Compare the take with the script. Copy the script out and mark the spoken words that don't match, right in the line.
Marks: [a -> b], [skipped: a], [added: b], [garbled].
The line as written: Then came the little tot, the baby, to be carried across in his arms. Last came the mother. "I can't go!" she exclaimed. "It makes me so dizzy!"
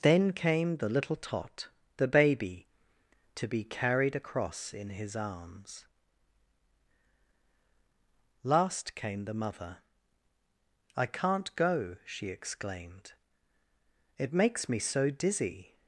Then came the little tot, the baby, to be carried across in his arms. Last came the mother. "I can't go!" she exclaimed. "It makes me so dizzy!"